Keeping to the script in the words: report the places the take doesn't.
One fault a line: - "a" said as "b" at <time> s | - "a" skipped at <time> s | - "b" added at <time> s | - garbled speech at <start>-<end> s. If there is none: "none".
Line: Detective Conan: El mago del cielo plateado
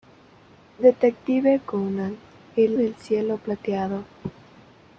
- "mago" skipped at 2.8 s